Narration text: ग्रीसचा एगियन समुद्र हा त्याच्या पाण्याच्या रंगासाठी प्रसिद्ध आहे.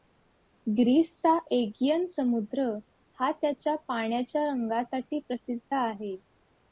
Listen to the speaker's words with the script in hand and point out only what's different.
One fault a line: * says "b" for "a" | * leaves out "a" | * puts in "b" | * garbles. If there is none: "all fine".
all fine